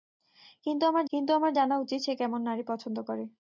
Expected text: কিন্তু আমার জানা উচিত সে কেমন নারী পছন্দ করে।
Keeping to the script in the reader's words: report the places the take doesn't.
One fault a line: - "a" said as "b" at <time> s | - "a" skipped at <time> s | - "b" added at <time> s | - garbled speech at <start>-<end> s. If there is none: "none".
- "কিন্তু আমার" added at 1.1 s